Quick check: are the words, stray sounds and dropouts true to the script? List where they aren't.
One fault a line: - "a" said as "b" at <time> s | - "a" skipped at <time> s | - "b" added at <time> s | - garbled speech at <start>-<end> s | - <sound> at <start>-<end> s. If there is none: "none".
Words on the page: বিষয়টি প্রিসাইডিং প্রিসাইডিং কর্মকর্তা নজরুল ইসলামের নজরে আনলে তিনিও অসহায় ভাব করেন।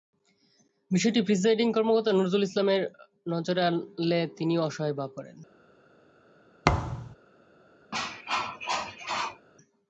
- "প্রিসাইডিং" skipped at 1.7 s
- thud at 6.6-7.2 s
- cough at 7.9-9.5 s